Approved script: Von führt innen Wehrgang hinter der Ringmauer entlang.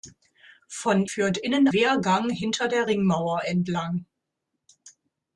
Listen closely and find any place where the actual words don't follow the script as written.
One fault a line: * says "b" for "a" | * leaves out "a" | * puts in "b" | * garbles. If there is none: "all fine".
all fine